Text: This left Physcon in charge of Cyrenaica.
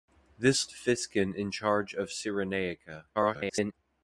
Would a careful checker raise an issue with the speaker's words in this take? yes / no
yes